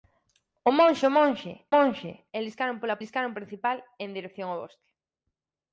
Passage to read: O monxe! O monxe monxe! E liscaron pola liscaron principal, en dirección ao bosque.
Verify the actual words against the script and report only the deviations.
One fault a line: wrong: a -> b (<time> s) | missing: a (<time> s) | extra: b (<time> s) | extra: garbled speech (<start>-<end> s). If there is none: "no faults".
no faults